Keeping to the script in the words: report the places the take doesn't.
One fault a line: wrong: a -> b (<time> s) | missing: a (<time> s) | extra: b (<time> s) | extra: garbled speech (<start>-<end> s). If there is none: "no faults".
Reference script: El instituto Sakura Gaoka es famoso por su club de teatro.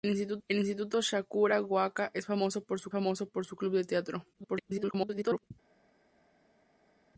extra: famoso por su (2.9 s)
extra: garbled speech (4.3-5.5 s)